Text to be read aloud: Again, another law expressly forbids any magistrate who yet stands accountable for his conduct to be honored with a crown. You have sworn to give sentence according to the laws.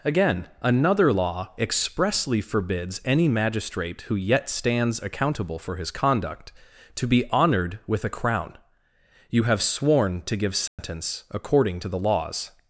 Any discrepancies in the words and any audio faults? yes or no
yes